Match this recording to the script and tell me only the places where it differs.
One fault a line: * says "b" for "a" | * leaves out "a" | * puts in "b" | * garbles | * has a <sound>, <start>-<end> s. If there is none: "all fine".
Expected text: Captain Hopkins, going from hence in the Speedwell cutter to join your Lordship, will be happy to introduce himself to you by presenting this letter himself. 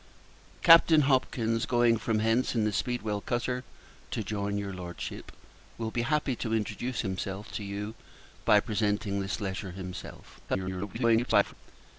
* garbles